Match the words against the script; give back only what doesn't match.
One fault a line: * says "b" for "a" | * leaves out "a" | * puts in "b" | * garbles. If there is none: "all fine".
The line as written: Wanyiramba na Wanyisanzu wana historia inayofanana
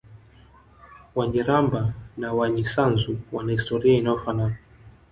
all fine